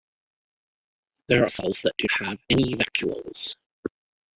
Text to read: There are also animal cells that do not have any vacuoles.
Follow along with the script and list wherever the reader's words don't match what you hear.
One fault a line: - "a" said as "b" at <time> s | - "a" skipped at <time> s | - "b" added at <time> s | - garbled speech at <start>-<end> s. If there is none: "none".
- "also animal" skipped at 1.5 s
- "not" skipped at 2.1 s